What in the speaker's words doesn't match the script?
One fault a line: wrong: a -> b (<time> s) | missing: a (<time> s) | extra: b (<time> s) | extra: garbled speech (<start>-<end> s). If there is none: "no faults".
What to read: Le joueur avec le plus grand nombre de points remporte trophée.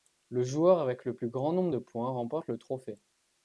extra: le (2.5 s)